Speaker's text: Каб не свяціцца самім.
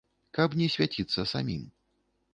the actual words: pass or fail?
pass